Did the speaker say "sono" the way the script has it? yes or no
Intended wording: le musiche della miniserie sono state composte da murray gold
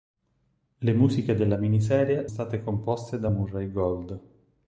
no